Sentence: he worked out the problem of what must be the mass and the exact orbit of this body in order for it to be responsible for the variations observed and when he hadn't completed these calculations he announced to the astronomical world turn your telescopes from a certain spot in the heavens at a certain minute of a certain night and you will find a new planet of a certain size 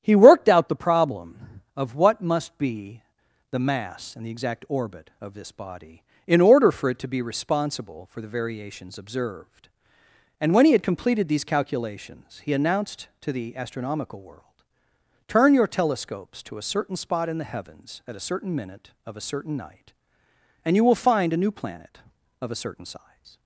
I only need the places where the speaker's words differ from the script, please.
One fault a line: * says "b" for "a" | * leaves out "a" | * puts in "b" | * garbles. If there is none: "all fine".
* says "had" for "hadn't"
* says "to" for "from"